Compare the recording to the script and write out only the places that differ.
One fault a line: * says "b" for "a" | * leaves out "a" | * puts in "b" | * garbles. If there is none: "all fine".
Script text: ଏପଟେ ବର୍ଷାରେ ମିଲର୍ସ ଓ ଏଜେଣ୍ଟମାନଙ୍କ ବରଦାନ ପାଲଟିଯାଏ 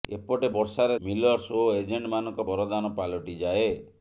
all fine